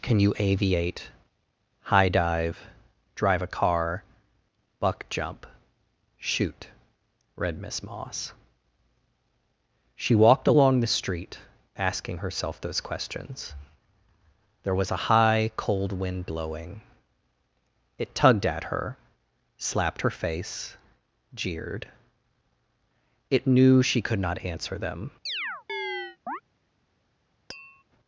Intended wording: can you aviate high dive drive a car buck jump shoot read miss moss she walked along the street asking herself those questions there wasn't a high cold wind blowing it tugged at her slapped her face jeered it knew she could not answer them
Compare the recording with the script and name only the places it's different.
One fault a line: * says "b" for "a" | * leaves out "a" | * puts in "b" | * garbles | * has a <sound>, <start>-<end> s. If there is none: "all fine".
* says "was" for "wasn't"
* has a chirp, 25.3-26.4 s
* has a tap, 27.5-27.8 s